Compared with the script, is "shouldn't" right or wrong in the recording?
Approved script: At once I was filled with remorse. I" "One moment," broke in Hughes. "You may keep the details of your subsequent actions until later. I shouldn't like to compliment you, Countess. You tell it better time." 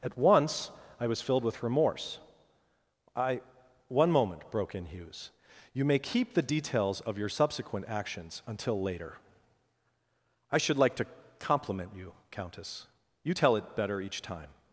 wrong